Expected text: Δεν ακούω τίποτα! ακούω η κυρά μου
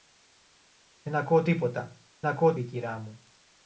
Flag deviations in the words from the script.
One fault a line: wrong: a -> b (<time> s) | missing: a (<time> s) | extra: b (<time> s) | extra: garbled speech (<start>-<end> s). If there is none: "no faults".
no faults